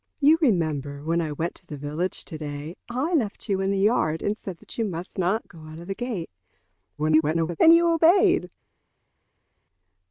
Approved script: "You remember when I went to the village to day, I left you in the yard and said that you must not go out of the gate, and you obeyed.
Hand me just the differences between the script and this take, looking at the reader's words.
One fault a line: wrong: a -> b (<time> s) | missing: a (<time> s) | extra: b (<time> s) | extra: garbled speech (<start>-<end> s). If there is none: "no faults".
extra: garbled speech (7.0-7.6 s)